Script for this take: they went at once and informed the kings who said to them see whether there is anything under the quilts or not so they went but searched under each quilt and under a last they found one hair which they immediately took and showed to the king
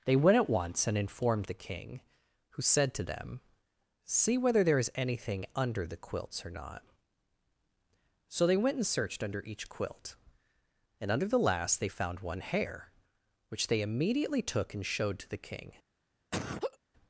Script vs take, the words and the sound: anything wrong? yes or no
yes